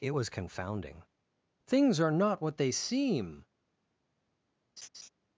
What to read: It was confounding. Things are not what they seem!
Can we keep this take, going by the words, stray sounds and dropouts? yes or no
no